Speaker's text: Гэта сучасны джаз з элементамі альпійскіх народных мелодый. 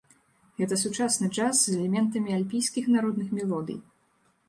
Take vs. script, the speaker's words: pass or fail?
pass